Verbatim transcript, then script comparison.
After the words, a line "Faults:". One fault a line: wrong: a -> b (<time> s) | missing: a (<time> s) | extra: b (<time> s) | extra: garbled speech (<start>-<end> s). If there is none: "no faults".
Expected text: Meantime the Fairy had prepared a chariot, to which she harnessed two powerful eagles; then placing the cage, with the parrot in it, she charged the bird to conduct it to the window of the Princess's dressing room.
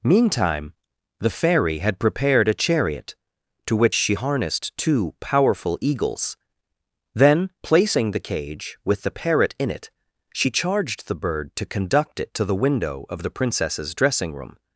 Meantime the Fairy had prepared a chariot, to which she harnessed two powerful eagles; then placing the cage, with the parrot in it, she charged the bird to conduct it to the window of the Princess's dressing room.
Faults:
no faults